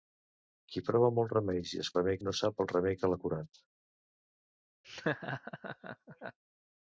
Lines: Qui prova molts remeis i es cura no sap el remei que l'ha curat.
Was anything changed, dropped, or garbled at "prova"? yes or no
no